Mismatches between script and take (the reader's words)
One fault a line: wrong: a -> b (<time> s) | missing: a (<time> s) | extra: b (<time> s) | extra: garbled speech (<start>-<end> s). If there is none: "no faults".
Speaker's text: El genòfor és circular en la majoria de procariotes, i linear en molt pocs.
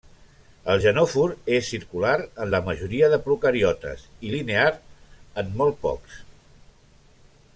no faults